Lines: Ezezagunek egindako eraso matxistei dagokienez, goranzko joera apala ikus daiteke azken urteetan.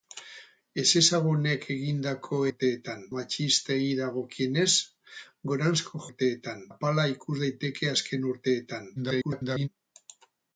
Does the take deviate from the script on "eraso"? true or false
true